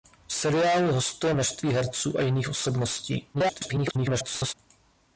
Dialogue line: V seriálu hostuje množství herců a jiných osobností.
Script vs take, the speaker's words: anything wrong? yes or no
yes